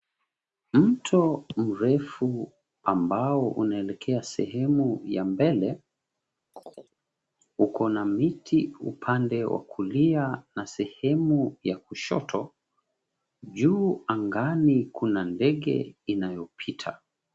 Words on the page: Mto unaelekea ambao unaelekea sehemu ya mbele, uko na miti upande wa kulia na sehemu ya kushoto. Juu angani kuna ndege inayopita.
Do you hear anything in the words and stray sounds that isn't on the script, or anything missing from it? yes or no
yes